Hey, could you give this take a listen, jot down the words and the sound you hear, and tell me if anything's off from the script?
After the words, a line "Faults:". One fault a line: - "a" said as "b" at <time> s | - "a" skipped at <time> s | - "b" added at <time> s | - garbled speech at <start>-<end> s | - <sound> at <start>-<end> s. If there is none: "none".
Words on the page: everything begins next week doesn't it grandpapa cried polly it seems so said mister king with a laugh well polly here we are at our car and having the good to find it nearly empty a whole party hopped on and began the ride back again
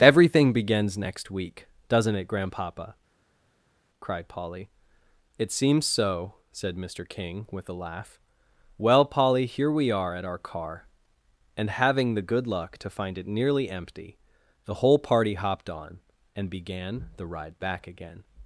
everything begins next week doesn't it grandpapa cried polly it seems so said mister king with a laugh well polly here we are at our car and having the good luck to find it nearly empty the whole party hopped on and began the ride back again
Faults:
- "luck" added at 12.5 s
- "a" said as "the" at 14.6 s